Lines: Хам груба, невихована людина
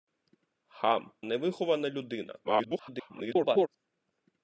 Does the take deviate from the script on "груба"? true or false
true